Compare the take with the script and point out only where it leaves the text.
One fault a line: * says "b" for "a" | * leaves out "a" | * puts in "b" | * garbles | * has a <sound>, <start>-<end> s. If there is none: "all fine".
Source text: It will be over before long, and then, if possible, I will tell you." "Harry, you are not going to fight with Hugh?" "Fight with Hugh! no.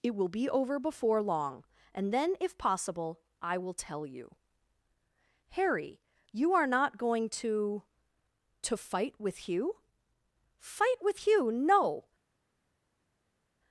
* puts in "to"